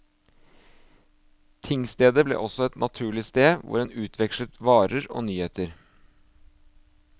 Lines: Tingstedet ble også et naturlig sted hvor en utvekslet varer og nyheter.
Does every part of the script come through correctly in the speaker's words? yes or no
yes